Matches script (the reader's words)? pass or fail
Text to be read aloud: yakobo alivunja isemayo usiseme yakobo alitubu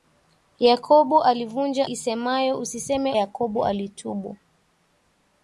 pass